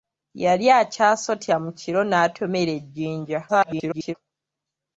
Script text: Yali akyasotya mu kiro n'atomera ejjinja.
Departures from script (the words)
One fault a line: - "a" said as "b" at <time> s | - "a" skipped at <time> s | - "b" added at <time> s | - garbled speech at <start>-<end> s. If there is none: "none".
- garbled speech at 3.5-4.1 s